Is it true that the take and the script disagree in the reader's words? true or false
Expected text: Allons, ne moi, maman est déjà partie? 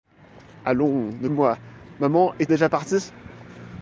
false